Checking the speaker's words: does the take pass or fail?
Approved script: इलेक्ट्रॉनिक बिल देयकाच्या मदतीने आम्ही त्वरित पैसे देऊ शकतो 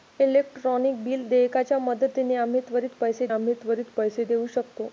fail